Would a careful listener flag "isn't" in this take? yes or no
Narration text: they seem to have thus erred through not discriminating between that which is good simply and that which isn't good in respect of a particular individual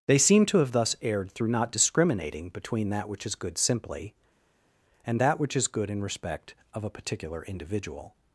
yes